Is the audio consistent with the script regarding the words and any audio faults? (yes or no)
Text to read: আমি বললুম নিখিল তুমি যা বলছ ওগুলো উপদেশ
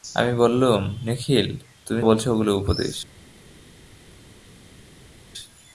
no